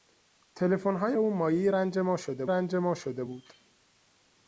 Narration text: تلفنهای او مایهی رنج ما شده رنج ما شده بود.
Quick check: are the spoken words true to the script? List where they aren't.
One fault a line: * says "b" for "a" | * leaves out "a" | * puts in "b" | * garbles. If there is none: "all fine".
all fine